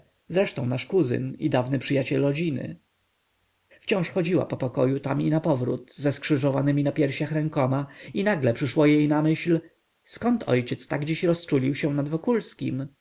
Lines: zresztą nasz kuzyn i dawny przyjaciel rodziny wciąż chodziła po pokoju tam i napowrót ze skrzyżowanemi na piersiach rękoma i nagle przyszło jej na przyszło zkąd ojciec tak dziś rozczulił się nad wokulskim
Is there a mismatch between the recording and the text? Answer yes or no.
yes